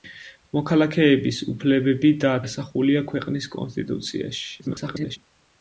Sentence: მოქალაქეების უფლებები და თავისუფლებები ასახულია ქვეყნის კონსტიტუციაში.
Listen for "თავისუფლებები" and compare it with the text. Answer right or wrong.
wrong